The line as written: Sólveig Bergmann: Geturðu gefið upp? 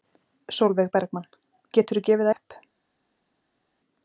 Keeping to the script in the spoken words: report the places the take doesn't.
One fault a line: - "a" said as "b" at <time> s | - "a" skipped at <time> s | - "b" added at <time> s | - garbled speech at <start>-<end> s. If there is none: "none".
none